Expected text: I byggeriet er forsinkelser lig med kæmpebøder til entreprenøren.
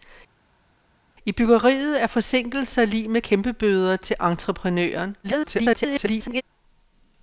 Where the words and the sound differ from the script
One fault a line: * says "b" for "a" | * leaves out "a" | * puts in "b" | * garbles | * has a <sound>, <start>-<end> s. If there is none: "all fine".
* garbles